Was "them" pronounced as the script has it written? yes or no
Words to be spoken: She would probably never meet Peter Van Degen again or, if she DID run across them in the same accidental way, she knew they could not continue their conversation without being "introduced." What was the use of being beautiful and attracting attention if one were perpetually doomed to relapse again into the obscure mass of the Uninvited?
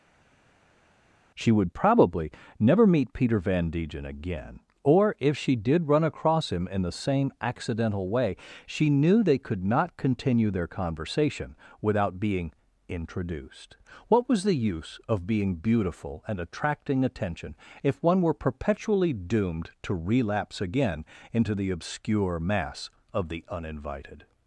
no